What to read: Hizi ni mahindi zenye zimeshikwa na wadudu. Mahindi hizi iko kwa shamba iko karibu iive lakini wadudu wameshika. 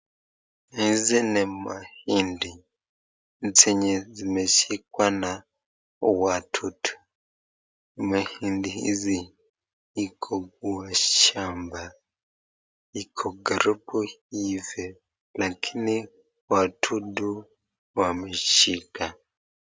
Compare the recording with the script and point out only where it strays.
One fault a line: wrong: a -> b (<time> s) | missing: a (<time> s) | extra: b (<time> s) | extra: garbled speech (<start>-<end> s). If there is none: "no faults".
no faults